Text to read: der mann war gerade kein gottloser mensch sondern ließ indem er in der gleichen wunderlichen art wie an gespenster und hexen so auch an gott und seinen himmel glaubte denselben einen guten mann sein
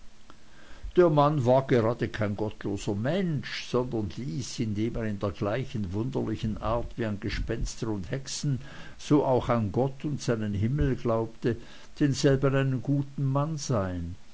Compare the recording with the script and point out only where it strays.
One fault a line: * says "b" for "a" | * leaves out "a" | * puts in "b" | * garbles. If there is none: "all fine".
all fine